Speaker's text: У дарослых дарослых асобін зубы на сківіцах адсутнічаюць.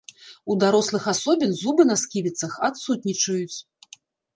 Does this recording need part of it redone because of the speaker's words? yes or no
yes